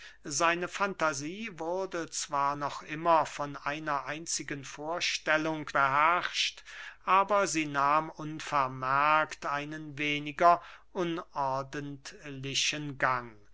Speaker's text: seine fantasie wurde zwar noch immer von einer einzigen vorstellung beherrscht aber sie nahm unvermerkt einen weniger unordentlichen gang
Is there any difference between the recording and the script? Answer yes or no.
no